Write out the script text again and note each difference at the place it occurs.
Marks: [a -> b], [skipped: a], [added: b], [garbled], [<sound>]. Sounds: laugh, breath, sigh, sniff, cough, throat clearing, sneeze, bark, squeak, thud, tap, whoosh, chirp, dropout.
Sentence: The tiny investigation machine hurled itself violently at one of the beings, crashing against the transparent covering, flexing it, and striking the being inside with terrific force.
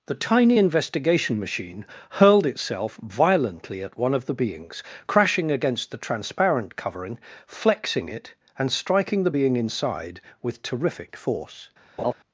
The tiny investigation machine hurled itself violently at one of the beings, crashing against the transparent covering, flexing it, and striking the being inside with terrific force. [laugh]